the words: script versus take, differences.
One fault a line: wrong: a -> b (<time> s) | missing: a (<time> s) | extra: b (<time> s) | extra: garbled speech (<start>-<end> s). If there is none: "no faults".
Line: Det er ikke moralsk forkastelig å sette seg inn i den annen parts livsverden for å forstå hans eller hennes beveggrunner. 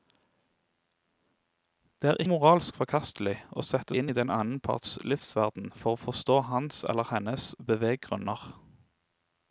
missing: ikke (2.2 s)
missing: seg (4.0 s)